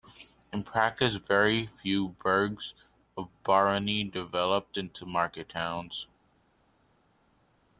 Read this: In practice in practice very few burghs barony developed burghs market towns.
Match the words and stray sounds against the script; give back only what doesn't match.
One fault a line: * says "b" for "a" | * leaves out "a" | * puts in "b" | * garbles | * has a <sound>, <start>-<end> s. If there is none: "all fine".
* leaves out "in practice"
* puts in "of"
* says "into" for "burghs"